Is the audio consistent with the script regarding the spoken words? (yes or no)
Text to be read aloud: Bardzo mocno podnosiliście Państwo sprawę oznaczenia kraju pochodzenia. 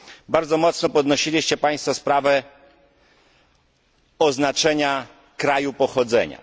yes